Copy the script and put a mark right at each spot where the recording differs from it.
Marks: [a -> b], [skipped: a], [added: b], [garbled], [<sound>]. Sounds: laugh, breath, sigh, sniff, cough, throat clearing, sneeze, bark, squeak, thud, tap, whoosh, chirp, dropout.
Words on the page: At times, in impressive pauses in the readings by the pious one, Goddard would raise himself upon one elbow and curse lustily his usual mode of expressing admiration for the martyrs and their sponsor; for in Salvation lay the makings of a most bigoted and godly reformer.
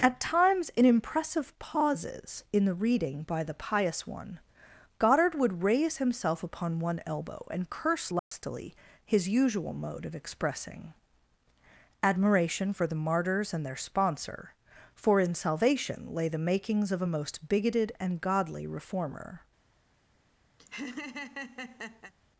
At times, in impressive pauses in the [readings -> reading] by the pious one, Goddard would raise himself upon one elbow and curse lustily [dropout] his usual mode of expressing admiration for the martyrs and their sponsor; for in Salvation lay the makings of a most bigoted and godly reformer. [laugh]